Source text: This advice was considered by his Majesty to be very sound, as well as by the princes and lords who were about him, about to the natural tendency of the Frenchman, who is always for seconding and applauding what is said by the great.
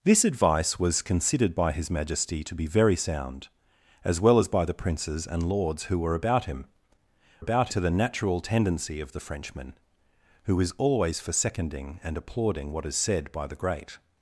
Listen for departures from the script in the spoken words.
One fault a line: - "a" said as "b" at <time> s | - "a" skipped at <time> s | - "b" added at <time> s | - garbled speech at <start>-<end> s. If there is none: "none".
none